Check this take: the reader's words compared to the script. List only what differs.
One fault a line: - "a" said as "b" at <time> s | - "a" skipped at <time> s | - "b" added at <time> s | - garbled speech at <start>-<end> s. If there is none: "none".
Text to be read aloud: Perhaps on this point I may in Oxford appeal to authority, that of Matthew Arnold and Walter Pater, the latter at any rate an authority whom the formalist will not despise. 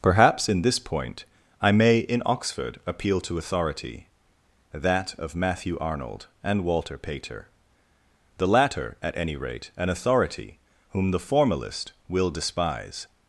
- "on" said as "in" at 0.5 s
- "not" skipped at 12.3 s